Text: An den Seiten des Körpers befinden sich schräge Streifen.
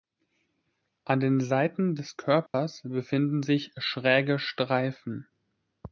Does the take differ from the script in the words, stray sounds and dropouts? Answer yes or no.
yes